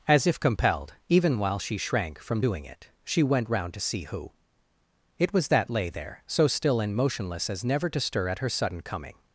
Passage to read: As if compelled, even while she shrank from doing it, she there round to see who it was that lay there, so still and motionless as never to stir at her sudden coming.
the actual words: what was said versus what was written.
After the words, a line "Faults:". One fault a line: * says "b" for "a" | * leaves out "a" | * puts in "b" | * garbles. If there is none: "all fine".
As if compelled, even while she shrank from doing it, she went round to see who it was that lay there, so still and motionless as never to stir at her sudden coming.
Faults:
* says "went" for "there"